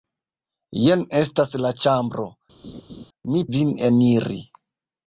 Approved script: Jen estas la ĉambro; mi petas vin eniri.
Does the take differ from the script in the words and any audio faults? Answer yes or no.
yes